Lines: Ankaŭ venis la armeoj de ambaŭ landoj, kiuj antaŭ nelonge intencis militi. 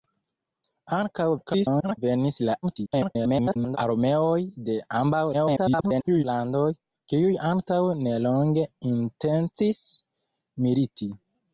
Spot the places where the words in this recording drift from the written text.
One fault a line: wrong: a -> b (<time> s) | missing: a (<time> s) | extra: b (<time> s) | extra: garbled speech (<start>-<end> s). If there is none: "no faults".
extra: garbled speech (1.4-2.0 s)
extra: garbled speech (2.6-3.8 s)
extra: garbled speech (5.3-6.2 s)